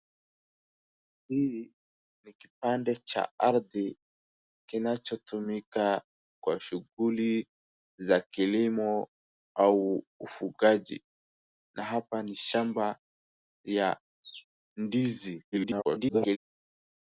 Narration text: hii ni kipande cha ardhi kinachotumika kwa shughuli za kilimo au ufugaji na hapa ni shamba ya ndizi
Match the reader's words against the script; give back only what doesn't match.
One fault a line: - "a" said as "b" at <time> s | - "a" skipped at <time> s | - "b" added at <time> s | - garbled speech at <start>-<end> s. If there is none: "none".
- garbled speech at 15.5-16.4 s